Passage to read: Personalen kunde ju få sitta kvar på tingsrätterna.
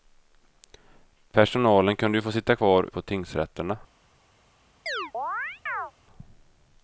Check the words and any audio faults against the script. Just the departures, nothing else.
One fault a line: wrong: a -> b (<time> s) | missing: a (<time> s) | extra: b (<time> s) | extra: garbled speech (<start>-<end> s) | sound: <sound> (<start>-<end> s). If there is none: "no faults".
sound: chirp (4.9-5.9 s)